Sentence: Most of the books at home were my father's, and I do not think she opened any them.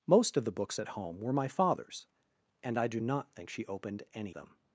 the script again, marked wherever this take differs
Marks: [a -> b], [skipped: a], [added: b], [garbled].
Most of the books at home were my father's, and I do not think she opened any them.